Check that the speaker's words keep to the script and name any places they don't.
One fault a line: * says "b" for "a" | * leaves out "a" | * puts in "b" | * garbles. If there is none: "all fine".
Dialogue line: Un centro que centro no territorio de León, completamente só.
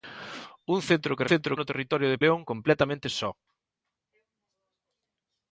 all fine